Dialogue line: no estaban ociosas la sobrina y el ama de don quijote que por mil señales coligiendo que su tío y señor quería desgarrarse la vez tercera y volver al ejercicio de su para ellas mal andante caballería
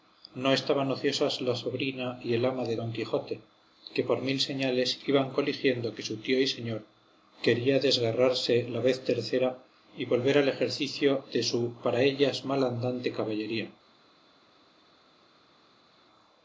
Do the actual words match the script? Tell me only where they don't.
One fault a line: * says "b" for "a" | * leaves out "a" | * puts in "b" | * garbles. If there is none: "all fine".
* puts in "iban"